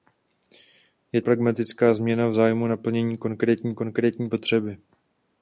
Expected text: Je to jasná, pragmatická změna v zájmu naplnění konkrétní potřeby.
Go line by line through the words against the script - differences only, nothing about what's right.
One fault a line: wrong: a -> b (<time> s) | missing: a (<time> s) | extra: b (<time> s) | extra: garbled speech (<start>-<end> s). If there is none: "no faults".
missing: to jasná (1.2 s)
extra: konkrétní (3.7 s)